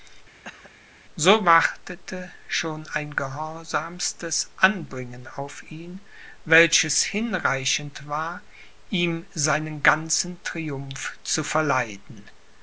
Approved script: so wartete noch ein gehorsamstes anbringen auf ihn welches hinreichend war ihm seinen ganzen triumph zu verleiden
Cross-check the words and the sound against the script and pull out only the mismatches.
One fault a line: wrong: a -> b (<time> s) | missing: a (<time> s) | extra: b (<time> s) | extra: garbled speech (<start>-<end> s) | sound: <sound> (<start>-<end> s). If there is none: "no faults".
sound: cough (0.4-0.7 s)
wrong: noch -> schon (2.5 s)